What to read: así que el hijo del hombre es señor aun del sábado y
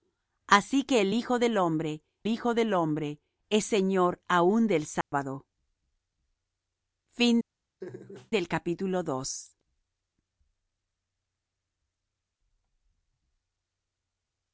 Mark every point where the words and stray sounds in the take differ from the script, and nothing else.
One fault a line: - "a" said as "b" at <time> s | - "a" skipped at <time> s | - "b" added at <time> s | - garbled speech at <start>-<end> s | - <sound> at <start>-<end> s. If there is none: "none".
- "hijo del hombre" added at 2.3 s
- dropout at 5.0-5.1 s
- laugh at 7.8-8.3 s